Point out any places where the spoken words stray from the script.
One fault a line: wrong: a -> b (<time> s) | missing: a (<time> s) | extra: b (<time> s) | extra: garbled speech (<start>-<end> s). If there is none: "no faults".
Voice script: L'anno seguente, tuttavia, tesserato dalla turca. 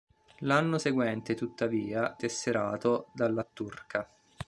no faults